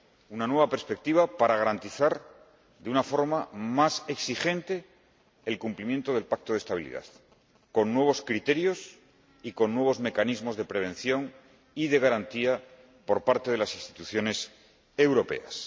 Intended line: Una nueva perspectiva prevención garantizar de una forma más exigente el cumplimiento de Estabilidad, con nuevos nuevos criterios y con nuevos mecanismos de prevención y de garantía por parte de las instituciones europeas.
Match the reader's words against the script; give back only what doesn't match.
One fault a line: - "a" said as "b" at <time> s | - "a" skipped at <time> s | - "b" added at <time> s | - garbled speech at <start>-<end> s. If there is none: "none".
- "prevención" said as "para" at 1.3 s
- "del Pacto" added at 6.1 s
- "nuevos" skipped at 8.2 s